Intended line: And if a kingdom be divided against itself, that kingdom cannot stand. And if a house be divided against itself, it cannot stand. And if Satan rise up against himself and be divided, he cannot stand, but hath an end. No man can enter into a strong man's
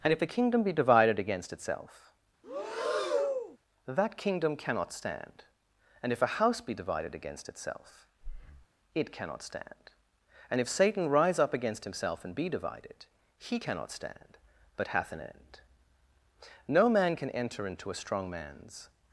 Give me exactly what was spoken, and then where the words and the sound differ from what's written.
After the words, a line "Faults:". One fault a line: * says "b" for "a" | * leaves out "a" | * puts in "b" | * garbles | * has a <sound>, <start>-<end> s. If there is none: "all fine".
And if a kingdom be divided against itself, that kingdom cannot stand. And if a house be divided against itself, it cannot stand. And if Satan rise up against himself and be divided, he cannot stand, but hath an end. No man can enter into a strong man's
Faults:
* has a breath, 2.4-3.6 s
* has a breath, 8.2-8.7 s